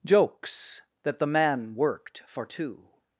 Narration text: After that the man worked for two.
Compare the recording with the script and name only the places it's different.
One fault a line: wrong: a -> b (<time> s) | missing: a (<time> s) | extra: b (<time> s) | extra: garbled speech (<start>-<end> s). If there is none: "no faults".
wrong: After -> Jokes (0.0 s)